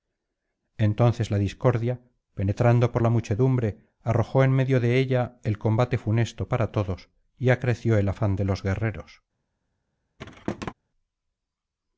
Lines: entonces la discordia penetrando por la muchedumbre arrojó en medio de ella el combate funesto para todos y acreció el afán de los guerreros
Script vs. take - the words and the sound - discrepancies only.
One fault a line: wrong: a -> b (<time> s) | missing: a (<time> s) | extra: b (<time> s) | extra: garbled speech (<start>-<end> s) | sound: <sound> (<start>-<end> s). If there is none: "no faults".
sound: thud (10.2-10.7 s)